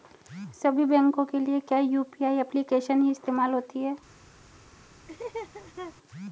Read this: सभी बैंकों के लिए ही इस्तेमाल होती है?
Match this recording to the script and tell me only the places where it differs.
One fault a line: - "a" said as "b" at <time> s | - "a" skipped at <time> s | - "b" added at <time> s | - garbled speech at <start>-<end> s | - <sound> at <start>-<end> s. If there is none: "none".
- "क्या यू.पी.आई एप्लिकेशन" added at 1.6 s
- laugh at 5.1-6.0 s